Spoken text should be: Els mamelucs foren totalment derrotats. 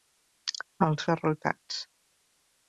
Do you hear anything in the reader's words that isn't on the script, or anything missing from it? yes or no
yes